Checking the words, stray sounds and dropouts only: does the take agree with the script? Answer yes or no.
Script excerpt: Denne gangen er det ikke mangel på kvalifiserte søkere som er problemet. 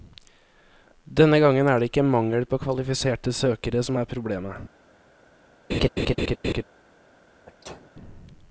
no